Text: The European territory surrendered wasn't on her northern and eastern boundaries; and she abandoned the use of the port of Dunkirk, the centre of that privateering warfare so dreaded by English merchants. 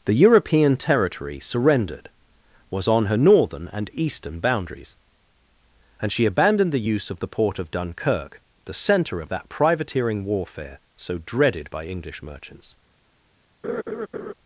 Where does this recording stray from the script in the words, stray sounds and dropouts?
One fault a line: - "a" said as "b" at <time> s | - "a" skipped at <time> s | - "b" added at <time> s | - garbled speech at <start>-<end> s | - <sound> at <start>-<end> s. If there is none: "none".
- "wasn't" said as "was" at 2.7 s
- laugh at 13.6-14.3 s